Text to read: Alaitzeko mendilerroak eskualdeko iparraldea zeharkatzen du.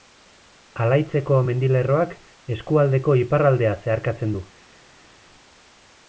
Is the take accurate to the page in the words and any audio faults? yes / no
yes